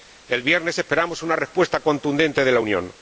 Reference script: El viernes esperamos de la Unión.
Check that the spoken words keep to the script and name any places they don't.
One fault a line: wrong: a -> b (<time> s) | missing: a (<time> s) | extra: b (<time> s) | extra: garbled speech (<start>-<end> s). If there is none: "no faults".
extra: una respuesta contundente (1.2 s)